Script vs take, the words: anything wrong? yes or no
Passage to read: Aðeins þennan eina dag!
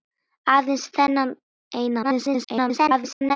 yes